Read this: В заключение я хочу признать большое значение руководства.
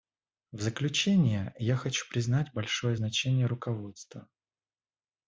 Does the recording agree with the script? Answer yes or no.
yes